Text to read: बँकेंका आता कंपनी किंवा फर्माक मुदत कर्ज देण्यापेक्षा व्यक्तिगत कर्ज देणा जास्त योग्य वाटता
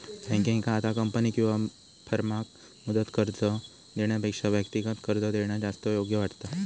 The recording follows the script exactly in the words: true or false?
true